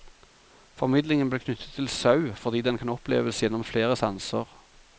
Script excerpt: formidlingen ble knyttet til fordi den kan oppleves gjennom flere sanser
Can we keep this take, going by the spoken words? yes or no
no